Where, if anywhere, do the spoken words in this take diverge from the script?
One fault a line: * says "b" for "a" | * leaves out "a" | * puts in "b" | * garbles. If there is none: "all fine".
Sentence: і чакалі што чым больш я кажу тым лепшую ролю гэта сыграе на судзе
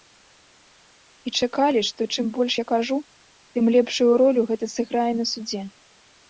all fine